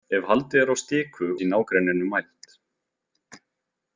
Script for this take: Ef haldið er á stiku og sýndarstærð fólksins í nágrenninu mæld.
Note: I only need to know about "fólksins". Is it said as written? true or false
false